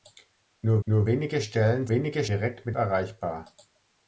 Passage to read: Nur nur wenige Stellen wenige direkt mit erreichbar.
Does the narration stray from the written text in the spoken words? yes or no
no